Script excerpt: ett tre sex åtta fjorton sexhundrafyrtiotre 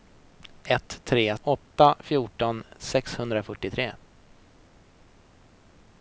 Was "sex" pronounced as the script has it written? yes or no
no